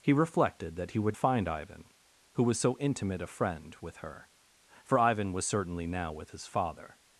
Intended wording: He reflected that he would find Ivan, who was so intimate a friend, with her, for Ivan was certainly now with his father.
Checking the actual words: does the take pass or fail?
pass